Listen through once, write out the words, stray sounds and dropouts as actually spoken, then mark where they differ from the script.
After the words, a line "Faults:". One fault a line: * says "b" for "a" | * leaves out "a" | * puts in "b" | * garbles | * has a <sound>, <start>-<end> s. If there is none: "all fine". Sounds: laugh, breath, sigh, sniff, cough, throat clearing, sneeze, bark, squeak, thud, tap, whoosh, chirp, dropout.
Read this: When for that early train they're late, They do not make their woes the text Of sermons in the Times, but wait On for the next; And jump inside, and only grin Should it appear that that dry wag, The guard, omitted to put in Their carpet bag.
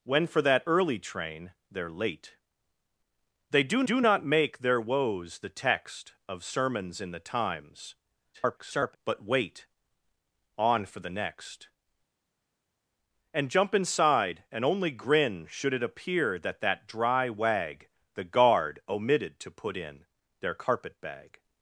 When for that early train they're late, They do do not make their woes the text Of sermons in the Times, [garbled] but wait On for the next; And jump inside, and only grin Should it appear that that dry wag, The guard, omitted to put in Their carpet bag.
Faults:
* puts in "do"
* garbles